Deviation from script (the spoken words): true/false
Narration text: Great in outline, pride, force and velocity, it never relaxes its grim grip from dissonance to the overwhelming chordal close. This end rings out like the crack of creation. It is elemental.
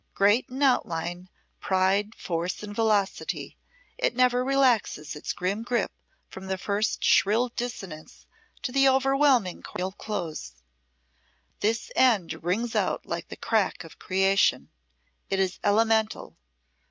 true